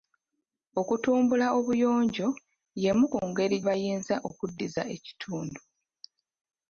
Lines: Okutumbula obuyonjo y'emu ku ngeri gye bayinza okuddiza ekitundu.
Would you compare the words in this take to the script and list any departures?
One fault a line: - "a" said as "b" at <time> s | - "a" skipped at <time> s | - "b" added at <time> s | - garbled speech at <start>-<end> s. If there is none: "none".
- "gye" skipped at 3.6 s